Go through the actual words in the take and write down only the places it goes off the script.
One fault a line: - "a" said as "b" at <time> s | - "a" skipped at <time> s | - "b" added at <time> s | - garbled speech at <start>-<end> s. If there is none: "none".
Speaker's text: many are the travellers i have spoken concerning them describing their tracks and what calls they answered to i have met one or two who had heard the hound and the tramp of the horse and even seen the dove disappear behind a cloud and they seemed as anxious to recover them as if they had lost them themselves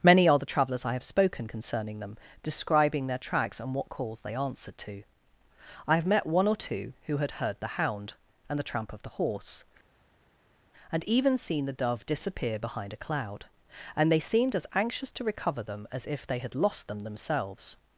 none